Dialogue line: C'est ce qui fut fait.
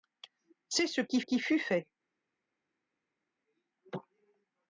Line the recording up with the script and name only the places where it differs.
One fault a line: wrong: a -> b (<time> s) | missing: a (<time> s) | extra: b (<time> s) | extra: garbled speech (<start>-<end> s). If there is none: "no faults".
extra: qui (1.2 s)